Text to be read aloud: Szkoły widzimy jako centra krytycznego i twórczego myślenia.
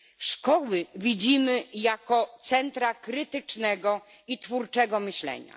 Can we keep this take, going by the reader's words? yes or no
yes